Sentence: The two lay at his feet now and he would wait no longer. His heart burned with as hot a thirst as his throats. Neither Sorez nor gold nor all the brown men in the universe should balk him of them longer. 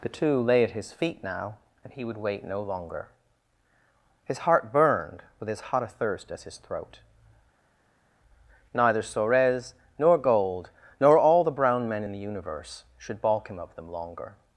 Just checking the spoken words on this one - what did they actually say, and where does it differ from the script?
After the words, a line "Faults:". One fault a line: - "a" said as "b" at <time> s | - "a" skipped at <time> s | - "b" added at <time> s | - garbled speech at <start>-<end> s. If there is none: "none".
The two lay at his feet now and he would wait no longer. His heart burned with as hot a thirst as his throat. Neither Sorez nor gold nor all the brown men in the universe should balk him of them longer.
Faults:
- "throats" said as "throat" at 6.6 s